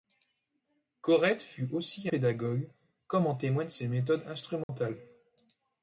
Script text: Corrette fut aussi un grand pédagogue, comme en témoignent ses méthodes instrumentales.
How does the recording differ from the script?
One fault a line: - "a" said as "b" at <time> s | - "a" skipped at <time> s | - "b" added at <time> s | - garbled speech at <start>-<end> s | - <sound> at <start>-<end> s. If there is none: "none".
- "un grand" skipped at 2.1 s
- dropout at 4.6-4.7 s